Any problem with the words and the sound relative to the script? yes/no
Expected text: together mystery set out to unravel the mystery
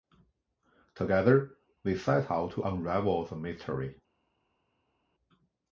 yes